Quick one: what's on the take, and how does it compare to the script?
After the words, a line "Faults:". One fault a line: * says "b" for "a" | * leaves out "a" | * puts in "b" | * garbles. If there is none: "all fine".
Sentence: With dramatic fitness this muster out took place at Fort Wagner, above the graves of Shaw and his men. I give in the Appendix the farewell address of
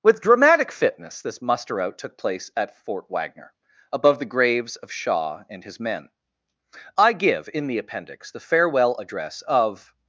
With dramatic fitness this muster out took place at Fort Wagner, above the graves of Shaw and his men. I give in the Appendix the farewell address of
Faults:
all fine